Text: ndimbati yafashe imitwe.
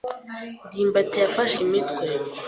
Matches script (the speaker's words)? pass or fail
pass